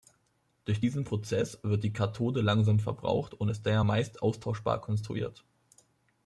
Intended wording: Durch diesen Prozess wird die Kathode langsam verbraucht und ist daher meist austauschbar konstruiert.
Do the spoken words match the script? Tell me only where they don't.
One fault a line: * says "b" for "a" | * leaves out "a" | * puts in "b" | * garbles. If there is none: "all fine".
all fine